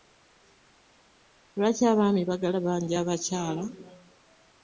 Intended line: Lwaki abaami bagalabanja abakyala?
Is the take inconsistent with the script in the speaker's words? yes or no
no